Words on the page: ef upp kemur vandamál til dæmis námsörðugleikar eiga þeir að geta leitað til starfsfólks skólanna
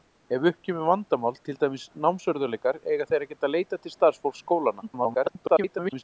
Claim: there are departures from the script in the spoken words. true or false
true